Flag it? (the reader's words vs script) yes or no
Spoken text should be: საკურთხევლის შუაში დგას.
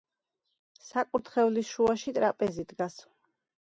yes